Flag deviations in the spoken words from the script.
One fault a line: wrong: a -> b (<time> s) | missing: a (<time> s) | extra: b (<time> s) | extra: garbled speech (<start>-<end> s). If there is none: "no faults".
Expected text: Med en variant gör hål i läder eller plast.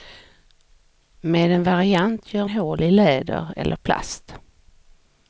no faults